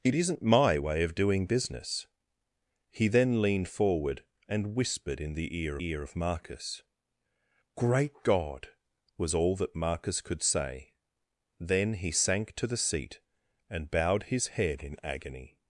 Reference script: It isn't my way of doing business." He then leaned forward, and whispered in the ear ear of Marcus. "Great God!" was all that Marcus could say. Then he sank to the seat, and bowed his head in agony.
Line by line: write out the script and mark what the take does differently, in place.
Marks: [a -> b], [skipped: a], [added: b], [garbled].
It isn't my way of doing business." He then leaned forward, and whispered in the ear ear of Marcus. "Great God!" was all that Marcus could say. Then he sank to the seat, and bowed his head in agony.